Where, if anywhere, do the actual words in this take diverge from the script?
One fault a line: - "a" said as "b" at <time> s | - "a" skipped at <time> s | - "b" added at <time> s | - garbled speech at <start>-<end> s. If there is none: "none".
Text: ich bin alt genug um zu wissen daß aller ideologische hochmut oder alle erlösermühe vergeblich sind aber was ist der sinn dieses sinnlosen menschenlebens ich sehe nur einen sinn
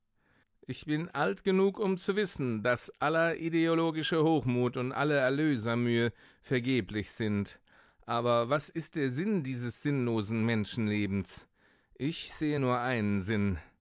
- "oder" said as "und" at 4.8 s